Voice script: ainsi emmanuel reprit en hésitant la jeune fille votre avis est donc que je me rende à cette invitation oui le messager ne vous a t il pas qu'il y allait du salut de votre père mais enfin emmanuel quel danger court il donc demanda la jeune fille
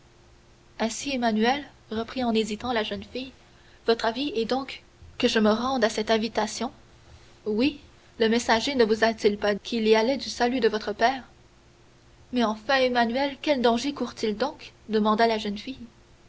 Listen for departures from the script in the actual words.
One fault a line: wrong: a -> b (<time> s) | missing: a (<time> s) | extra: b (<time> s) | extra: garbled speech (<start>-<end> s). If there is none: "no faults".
no faults